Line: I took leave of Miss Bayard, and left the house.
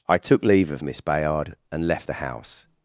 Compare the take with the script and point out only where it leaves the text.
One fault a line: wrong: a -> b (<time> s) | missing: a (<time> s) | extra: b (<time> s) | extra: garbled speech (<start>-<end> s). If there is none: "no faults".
no faults